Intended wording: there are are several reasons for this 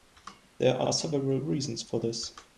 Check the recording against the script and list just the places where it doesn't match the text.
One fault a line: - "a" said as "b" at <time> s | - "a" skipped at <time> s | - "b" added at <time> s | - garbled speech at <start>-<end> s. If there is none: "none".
none